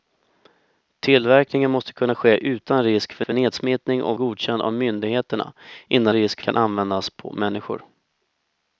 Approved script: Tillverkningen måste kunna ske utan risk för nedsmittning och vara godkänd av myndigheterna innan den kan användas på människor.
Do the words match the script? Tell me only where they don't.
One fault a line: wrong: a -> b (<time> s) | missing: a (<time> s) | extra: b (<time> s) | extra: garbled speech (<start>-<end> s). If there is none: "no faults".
extra: för (3.2 s)
missing: vara (4.2 s)
wrong: den -> risk (6.1 s)